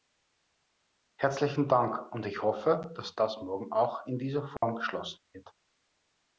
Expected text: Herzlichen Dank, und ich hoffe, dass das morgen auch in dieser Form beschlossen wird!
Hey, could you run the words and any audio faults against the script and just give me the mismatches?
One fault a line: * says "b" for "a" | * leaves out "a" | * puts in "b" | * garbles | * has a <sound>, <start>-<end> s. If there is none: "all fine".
* has a dropout, 4.6-4.6 s